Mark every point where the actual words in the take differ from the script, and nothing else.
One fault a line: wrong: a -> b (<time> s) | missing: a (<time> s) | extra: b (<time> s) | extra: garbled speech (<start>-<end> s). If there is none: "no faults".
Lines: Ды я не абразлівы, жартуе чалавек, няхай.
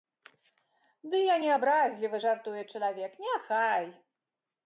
no faults